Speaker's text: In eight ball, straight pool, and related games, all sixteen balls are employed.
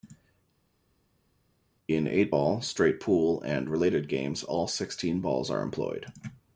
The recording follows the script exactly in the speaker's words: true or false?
true